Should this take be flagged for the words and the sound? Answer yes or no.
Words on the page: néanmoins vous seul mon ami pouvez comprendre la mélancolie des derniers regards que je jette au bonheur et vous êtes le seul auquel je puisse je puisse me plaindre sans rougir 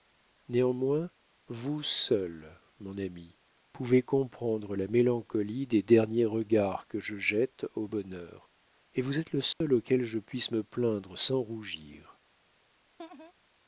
yes